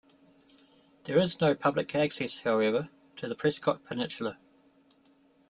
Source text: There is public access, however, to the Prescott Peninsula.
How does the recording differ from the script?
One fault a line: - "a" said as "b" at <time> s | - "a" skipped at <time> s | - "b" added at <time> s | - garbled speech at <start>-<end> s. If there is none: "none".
- "no" added at 1.4 s